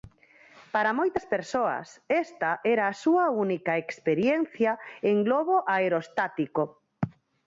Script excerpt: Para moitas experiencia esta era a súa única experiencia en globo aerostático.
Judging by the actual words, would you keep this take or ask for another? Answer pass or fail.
fail